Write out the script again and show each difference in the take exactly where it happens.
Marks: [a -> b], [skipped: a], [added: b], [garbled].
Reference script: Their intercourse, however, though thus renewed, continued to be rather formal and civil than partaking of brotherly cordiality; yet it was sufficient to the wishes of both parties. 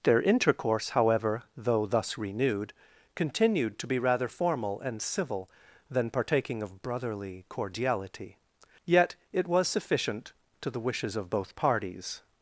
Their intercourse, however, though thus renewed, continued to be rather formal and civil than partaking of brotherly cordiality; yet it was sufficient to the wishes of both parties.